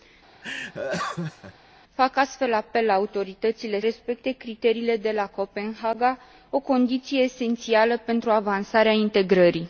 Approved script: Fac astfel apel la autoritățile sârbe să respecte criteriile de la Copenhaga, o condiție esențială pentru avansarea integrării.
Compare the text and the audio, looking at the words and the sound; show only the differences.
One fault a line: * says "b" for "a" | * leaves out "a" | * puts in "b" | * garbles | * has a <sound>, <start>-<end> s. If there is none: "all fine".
* has a laugh, 0.4-1.5 s
* leaves out "sârbe să"